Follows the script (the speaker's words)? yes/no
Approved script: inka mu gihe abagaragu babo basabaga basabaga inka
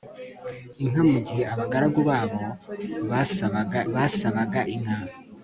yes